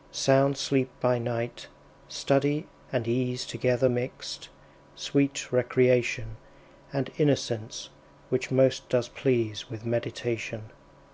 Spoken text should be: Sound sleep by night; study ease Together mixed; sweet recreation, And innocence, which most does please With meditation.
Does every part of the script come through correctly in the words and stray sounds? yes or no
no